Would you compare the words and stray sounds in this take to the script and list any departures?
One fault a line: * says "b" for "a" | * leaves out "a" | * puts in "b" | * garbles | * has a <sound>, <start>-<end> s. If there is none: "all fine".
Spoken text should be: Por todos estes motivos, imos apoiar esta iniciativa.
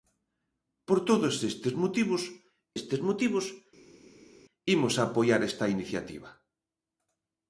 * puts in "estes motivos"